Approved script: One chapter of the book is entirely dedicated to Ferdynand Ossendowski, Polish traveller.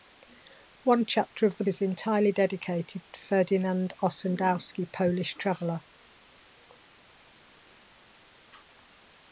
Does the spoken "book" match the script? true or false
false